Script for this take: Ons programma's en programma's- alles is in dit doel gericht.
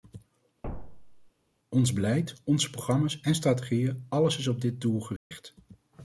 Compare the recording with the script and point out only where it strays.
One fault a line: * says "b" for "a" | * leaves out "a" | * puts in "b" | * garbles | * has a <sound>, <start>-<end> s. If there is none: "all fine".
* has a thud, 0.6-1.3 s
* puts in "beleid onze"
* says "strategieën" for "programma's"
* says "op" for "in"
* has a dropout, 5.2-5.3 s